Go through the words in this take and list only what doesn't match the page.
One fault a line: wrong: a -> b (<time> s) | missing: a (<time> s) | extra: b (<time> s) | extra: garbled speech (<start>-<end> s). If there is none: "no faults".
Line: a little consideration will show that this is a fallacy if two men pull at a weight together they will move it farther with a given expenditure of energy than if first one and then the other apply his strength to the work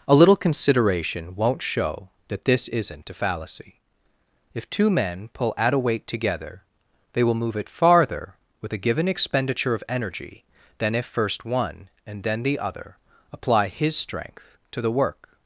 wrong: will -> won't (1.4 s)
wrong: is -> isn't (2.7 s)